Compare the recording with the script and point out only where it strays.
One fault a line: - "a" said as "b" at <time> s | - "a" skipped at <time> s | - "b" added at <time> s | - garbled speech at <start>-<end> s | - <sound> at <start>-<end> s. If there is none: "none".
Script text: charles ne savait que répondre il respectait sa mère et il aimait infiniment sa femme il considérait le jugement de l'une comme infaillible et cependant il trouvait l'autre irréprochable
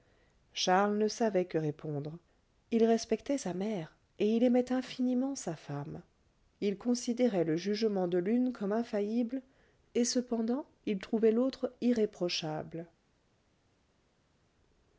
none